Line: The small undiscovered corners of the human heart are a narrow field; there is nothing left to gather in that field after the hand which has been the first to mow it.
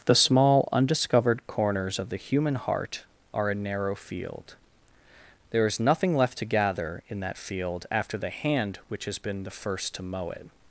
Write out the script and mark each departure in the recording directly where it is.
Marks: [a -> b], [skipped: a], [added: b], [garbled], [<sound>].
The small undiscovered corners of the human heart are a narrow field; there is nothing left to gather in that field after the hand which has been the first to mow it.